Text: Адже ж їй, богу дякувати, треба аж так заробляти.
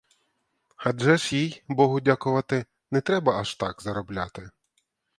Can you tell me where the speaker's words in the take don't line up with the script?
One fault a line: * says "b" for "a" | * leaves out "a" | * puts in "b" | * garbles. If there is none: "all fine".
* puts in "не"